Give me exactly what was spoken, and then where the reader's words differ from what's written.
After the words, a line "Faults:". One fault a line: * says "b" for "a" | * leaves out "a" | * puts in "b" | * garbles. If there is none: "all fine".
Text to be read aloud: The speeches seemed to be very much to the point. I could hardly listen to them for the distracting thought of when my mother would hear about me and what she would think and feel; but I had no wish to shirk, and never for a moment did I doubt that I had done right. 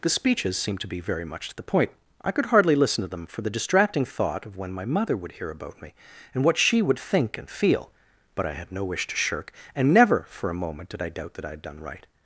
The speeches seemed to be very much to the point. I could hardly listen to them for the distracting thought of when my mother would hear about me and what she would think and feel; but I had no wish to shirk, and never for a moment did I doubt that I had done right.
Faults:
all fine